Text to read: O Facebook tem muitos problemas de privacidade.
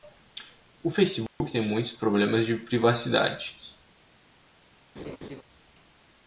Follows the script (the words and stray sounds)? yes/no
no